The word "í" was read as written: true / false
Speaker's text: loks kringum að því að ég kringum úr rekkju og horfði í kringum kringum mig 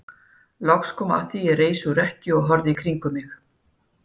true